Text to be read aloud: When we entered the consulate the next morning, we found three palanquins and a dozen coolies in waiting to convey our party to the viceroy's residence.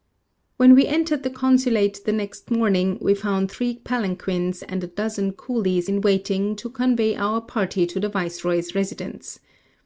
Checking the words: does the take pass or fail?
pass